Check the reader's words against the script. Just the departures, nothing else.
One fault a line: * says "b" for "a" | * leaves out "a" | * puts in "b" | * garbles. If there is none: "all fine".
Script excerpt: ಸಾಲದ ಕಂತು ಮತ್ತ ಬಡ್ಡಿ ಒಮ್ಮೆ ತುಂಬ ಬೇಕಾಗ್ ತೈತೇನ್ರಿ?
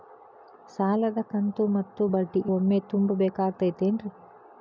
all fine